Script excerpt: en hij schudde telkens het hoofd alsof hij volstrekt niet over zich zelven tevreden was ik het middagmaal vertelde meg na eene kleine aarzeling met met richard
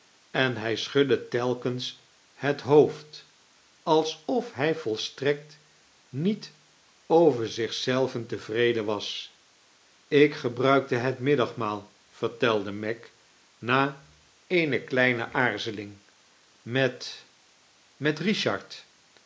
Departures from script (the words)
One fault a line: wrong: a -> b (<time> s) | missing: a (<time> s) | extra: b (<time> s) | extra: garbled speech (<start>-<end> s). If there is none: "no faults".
extra: gebruikte (10.3 s)